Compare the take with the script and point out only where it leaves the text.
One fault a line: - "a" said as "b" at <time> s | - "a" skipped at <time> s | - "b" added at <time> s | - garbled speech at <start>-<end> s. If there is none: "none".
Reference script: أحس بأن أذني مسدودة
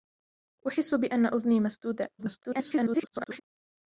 - garbled speech at 2.2-3.4 s